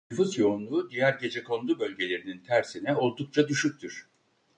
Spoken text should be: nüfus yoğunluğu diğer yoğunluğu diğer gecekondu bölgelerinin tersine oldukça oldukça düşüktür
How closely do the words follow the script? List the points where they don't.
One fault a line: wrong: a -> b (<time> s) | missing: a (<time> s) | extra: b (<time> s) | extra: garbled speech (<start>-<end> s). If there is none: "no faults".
missing: yoğunluğu diğer (1.1 s)
missing: oldukça (3.5 s)